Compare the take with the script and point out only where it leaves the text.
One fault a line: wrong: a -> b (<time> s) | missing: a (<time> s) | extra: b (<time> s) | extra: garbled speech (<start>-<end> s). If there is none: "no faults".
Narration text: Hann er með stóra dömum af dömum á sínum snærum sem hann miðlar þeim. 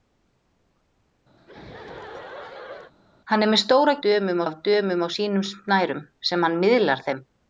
no faults